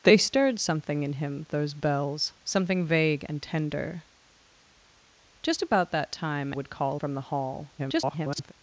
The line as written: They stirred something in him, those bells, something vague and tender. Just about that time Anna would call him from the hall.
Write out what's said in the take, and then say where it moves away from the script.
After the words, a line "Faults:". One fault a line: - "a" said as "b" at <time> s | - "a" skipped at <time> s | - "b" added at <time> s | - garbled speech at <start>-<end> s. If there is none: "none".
They stirred something in him, those bells, something vague and tender. Just about that time Would call from the hall. [garbled]
Faults:
- "Anna" skipped at 6.5 s
- "him" skipped at 7.0 s
- garbled speech at 7.8-8.5 s